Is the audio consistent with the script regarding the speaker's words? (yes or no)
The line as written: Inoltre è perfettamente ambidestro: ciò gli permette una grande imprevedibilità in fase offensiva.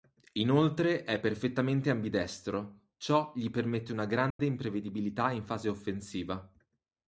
yes